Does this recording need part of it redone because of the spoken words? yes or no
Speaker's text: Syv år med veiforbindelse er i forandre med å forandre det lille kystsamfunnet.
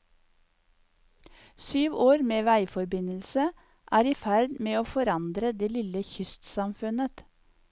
yes